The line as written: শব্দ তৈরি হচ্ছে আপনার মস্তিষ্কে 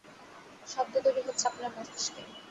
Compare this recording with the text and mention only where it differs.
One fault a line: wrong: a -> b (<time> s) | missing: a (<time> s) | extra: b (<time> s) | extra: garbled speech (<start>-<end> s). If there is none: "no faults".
no faults